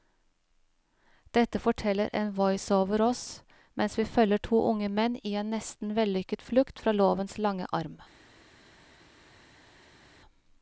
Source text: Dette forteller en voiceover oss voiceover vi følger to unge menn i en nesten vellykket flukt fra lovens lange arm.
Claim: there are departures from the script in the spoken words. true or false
true